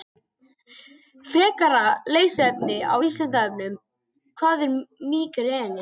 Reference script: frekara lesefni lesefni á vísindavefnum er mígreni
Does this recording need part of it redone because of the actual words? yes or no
yes